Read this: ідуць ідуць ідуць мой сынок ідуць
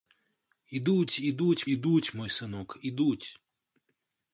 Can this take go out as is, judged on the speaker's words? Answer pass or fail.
pass